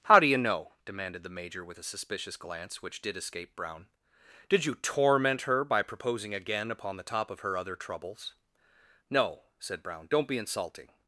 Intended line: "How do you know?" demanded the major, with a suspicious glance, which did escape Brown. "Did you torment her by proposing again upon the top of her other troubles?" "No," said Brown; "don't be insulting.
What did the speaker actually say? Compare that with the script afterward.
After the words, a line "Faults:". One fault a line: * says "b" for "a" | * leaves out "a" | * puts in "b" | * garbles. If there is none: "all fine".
"How do you know?" demanded the major, with a suspicious glance, which did escape Brown. "Did you torment her by proposing again upon the top of her other troubles?" "No," said Brown; "don't be insulting.
Faults:
all fine